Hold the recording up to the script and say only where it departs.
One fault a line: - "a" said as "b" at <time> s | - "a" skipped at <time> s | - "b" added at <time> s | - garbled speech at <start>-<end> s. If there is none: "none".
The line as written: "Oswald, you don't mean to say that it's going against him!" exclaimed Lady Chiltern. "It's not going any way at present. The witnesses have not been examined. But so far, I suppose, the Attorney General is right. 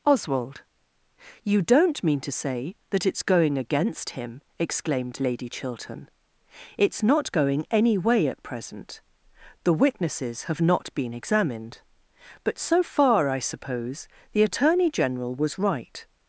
- "is" said as "was" at 15.4 s